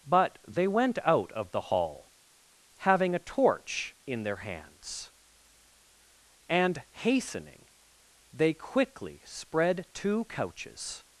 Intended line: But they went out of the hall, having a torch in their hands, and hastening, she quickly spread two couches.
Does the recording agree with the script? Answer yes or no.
no